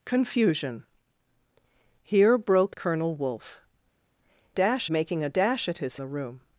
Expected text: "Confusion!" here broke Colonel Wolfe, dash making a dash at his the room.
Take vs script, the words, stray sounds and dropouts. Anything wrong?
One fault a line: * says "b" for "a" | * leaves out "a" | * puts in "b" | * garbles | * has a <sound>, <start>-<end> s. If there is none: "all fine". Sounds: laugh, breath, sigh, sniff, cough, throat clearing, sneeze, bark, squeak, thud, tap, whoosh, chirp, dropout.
all fine